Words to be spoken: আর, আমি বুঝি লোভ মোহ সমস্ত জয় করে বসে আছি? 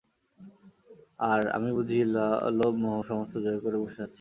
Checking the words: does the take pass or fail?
pass